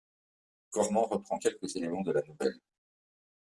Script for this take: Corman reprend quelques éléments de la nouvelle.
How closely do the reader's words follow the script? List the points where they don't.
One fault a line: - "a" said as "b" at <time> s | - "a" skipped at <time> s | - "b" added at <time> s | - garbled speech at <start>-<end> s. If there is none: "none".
none